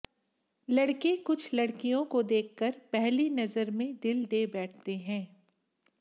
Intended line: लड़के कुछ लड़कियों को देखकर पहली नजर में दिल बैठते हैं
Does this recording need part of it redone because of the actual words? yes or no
yes